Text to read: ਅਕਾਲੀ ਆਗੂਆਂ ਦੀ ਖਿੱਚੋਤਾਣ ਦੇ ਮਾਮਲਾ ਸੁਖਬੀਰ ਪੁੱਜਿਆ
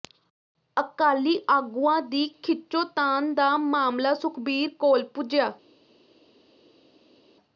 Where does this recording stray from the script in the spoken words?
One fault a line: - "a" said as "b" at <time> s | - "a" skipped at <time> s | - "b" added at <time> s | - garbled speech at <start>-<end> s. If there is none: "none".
- "ਦੇ" said as "ਦਾ" at 3.4 s
- "ਕੋਲ" added at 4.8 s